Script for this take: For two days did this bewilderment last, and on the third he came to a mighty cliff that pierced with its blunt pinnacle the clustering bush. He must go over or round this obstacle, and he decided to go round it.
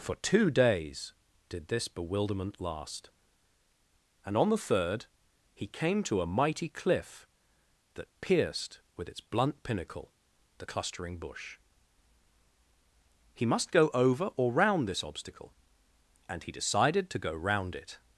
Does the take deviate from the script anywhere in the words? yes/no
no